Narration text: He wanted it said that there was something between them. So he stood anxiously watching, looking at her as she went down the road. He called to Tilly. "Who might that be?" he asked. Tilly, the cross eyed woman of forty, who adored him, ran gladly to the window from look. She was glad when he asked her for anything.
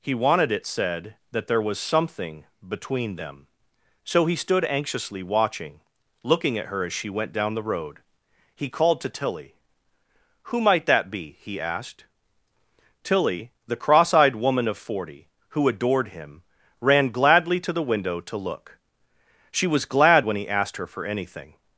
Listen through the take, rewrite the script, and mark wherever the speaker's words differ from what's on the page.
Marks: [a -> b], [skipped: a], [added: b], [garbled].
He wanted it said that there was something between them. So he stood anxiously watching, looking at her as she went down the road. He called to Tilly. "Who might that be?" he asked. Tilly, the cross eyed woman of forty, who adored him, ran gladly to the window [from -> to] look. She was glad when he asked her for anything.